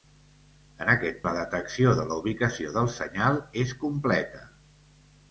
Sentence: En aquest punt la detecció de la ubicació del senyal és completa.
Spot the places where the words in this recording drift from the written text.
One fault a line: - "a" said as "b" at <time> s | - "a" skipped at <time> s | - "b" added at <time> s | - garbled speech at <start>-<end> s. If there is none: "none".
- "punt" skipped at 1.2 s